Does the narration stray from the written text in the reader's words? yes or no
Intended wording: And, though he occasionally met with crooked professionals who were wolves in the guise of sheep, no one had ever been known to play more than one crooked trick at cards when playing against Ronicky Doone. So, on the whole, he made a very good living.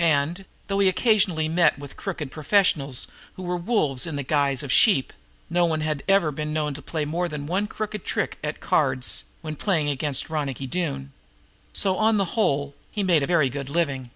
no